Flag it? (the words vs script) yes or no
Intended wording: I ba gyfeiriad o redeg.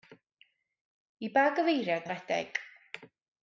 no